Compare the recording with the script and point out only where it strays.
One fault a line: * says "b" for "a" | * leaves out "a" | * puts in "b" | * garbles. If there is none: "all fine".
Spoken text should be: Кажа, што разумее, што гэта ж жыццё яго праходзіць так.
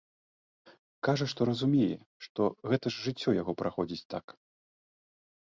all fine